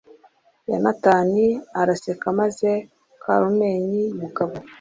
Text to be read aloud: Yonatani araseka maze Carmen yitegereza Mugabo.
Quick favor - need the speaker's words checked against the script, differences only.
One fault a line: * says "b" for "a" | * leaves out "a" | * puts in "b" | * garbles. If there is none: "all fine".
* leaves out "yitegereza"